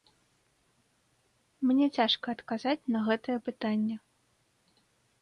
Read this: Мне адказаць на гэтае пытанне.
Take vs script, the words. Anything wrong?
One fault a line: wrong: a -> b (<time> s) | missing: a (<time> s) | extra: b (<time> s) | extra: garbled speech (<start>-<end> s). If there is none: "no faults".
extra: цяжка (2.0 s)